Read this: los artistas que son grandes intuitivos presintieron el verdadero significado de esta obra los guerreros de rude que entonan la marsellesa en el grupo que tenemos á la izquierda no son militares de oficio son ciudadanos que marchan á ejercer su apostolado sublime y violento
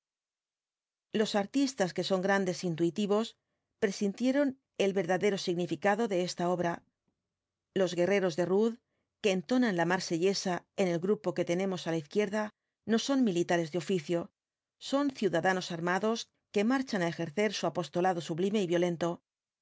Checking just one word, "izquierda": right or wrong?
right